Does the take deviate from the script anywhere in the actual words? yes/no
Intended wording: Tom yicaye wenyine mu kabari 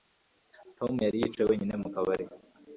yes